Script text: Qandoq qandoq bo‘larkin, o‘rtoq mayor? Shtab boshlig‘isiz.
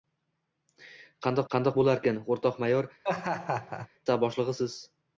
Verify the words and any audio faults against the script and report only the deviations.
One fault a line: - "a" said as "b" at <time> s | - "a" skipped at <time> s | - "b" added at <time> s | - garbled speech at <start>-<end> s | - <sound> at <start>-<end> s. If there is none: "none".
- laugh at 3.0-3.9 s